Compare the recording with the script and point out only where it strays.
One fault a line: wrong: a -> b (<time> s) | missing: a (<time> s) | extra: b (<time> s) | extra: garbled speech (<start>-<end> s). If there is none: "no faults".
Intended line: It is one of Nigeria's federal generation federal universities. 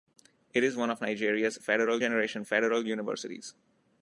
no faults